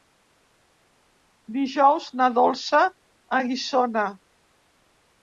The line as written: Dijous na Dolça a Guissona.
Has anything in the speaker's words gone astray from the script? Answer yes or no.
no